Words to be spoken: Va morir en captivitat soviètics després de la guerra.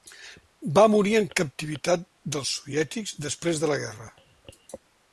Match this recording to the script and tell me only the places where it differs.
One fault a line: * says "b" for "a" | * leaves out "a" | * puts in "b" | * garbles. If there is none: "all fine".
* puts in "dels"